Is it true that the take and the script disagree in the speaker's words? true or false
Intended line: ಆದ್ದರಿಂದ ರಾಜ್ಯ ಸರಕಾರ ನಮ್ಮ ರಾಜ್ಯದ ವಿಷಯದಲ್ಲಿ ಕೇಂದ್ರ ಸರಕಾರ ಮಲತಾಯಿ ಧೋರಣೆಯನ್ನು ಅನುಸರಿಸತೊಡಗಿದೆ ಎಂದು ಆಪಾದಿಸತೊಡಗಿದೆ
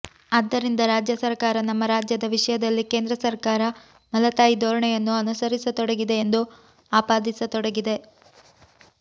false